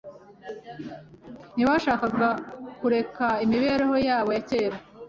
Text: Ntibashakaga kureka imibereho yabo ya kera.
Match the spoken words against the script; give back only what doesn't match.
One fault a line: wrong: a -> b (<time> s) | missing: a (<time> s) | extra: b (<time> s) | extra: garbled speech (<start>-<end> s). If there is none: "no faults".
no faults